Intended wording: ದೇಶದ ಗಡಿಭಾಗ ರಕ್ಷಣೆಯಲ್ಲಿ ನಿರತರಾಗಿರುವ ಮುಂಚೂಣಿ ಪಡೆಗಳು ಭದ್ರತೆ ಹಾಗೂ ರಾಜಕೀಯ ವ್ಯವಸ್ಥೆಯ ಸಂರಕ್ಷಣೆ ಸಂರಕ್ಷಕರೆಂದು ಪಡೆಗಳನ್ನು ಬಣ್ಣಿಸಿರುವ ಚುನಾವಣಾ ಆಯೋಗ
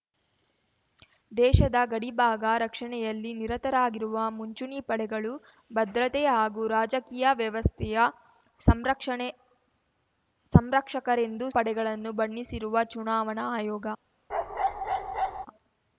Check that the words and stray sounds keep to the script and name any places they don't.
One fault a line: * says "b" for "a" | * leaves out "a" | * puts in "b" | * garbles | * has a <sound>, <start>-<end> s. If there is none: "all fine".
* has a bark, 14.3-15.5 s